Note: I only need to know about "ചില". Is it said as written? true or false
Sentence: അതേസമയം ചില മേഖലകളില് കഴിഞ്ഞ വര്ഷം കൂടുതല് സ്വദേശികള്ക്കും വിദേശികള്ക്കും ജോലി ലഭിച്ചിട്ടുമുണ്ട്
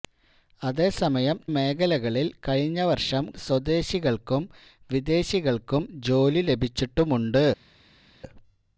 false